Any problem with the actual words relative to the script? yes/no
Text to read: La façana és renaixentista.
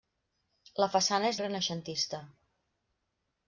no